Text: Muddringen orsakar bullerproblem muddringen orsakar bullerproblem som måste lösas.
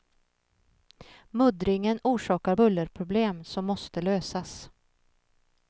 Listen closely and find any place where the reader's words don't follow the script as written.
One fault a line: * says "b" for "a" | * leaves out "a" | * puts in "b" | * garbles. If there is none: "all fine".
* leaves out "muddringen orsakar bullerproblem"